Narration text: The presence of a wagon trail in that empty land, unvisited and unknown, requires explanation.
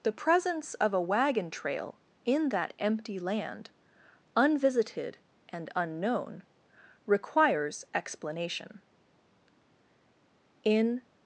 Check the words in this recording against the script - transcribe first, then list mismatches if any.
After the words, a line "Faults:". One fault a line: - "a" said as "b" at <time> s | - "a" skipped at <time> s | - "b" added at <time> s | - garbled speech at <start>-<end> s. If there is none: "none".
The presence of a wagon trail in that empty land, unvisited and unknown, requires explanation. In
Faults:
- "In" added at 10.6 s